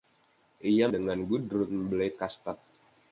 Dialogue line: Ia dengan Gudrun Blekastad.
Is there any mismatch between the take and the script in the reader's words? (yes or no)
no